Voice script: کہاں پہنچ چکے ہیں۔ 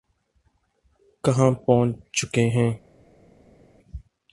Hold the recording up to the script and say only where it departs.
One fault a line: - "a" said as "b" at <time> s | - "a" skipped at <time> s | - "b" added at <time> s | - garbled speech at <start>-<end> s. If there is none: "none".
none